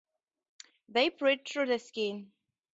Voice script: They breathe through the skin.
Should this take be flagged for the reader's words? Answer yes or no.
no